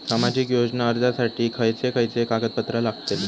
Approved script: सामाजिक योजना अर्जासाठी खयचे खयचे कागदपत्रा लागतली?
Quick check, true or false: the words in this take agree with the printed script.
true